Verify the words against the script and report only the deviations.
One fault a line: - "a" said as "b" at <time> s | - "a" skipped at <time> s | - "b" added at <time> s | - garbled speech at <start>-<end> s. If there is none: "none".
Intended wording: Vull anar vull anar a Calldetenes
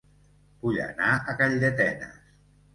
- "vull anar" skipped at 1.1 s